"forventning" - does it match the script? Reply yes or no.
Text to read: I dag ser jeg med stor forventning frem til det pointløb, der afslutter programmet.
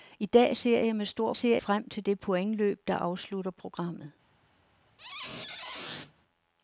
no